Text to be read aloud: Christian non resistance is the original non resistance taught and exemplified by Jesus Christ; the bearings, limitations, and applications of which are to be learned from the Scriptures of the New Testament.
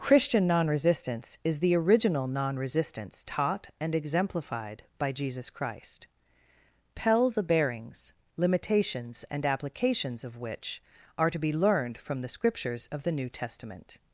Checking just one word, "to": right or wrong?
right